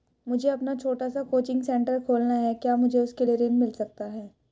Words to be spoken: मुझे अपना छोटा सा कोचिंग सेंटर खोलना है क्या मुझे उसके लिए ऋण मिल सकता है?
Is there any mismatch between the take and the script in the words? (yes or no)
no